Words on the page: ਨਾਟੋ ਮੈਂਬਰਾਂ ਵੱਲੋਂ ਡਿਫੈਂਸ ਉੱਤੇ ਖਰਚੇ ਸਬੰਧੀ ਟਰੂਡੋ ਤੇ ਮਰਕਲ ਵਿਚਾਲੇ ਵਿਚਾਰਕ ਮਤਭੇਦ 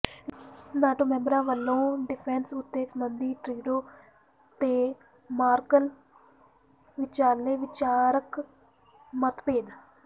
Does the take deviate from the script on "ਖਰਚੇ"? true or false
true